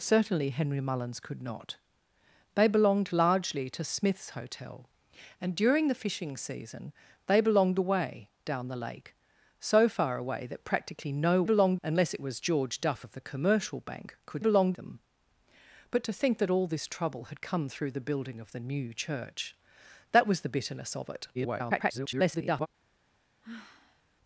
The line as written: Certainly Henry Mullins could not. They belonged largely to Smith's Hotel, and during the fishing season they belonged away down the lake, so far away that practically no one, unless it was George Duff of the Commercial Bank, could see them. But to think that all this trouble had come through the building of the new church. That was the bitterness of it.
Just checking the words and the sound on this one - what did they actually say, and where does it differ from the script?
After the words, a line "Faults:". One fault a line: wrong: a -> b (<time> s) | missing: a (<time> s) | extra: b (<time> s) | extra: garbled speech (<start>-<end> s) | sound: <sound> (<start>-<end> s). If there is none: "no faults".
Certainly Henry Mullins could not. They belonged largely to Smith's Hotel, and during the fishing season they belonged away down the lake, so far away that practically no belonged, unless it was George Duff of the Commercial Bank, could belonged them. But to think that all this trouble had come through the building of the new church. That was the bitterness of it. [garbled]
Faults:
wrong: one -> belonged (11.4 s)
wrong: see -> belonged (14.4 s)
extra: garbled speech (21.3-22.7 s)
sound: sigh (23.4-24.0 s)